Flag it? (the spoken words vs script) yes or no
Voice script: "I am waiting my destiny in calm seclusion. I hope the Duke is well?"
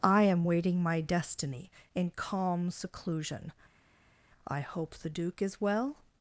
no